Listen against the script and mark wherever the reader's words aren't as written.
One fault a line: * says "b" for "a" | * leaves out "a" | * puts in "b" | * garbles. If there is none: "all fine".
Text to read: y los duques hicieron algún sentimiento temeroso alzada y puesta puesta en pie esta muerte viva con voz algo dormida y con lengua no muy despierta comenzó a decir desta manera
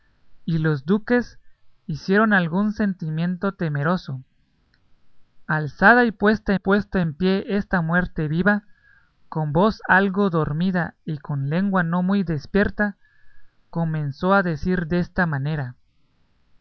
all fine